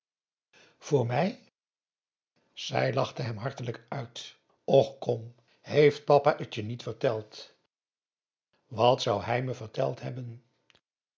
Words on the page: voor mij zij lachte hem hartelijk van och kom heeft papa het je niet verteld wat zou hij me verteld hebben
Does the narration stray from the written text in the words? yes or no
yes